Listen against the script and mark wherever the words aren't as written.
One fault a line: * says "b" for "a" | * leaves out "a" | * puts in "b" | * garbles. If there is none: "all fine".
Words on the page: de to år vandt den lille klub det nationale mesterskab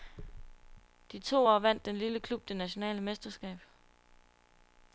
all fine